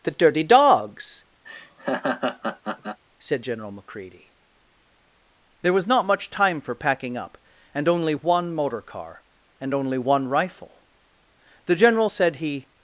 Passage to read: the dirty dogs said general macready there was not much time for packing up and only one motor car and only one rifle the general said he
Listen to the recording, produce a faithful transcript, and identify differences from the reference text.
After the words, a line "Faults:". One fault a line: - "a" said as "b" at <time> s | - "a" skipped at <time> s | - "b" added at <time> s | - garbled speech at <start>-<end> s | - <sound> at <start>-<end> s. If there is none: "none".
the dirty dogs said general macready there was not much time for packing up and only one motor car and only one rifle the general said he
Faults:
- laugh at 1.4-3.0 s